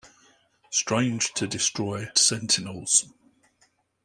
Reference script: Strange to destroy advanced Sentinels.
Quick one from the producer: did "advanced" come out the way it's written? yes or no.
no